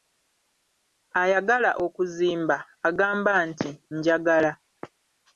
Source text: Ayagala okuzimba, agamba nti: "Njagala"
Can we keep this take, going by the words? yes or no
yes